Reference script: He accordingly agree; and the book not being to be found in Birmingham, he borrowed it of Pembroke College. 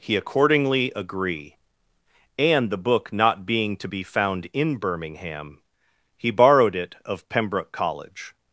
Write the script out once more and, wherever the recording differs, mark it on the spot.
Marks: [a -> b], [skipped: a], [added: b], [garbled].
He accordingly agree; and the book not being to be found in Birmingham, he borrowed it of Pembroke College.